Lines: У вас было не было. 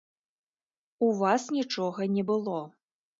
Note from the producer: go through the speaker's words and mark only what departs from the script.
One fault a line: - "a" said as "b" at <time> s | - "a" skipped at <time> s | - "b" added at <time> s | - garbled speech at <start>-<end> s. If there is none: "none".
- "было" said as "нічога" at 1.6 s